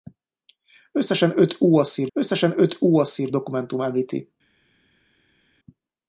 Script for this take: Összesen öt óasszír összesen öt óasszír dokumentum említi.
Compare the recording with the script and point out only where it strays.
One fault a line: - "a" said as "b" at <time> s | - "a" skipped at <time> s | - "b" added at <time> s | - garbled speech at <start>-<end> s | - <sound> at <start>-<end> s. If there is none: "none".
none